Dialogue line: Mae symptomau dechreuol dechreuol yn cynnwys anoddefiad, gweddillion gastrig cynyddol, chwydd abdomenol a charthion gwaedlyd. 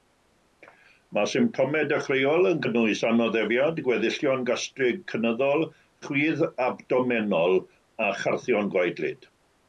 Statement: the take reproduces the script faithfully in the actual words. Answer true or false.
false